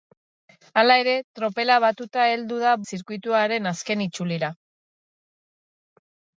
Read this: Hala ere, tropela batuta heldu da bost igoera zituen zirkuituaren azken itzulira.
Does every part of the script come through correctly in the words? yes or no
no